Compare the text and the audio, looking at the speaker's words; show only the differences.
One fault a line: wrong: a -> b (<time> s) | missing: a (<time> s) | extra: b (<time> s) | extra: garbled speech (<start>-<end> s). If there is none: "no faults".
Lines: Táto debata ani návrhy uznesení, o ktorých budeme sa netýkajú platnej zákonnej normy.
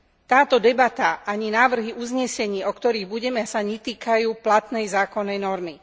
no faults